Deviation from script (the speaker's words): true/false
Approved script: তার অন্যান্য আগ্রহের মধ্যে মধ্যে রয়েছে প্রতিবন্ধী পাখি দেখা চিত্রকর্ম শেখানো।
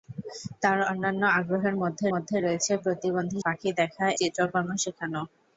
false